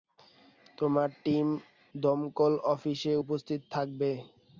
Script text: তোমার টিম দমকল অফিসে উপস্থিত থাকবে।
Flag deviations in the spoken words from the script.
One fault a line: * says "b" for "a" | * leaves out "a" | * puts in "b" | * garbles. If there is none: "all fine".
all fine